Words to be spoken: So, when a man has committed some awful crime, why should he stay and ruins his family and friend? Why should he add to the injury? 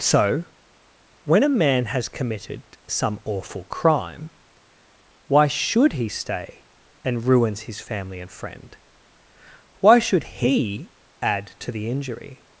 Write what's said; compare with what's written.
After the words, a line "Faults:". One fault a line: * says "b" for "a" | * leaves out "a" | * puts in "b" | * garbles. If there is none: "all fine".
So, when a man has committed some awful crime, why should he stay and ruins his family and friend? Why should he add to the injury?
Faults:
all fine